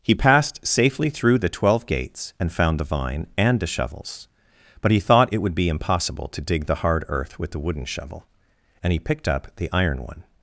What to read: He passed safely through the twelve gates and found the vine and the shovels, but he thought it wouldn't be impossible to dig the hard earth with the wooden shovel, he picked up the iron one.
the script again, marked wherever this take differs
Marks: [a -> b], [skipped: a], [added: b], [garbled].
He passed safely through the twelve gates and found the vine and the shovels, but he thought it [wouldn't -> would] be impossible to dig the hard earth with the wooden shovel, [added: and] he picked up the iron one.